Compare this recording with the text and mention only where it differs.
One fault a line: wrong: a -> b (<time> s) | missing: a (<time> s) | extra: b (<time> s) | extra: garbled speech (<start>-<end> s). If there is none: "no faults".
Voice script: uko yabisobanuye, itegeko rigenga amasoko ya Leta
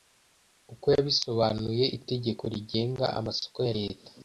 no faults